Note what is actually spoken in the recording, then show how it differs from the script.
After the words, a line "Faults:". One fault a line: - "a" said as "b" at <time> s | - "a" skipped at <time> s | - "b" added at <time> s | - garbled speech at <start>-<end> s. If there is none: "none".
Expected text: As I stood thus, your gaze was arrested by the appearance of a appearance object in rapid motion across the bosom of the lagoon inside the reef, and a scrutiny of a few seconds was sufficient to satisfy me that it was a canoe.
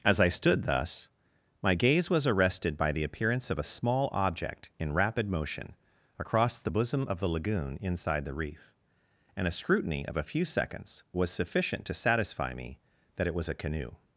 As I stood thus, my gaze was arrested by the appearance of a small object in rapid motion across the bosom of the lagoon inside the reef, and a scrutiny of a few seconds was sufficient to satisfy me that it was a canoe.
Faults:
- "your" said as "my" at 1.6 s
- "appearance" said as "small" at 3.6 s